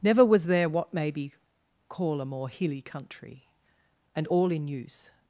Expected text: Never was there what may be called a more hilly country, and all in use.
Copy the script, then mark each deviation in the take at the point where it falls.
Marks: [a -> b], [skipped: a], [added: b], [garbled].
Never was there what may be [called -> call] a more hilly country, and all in use.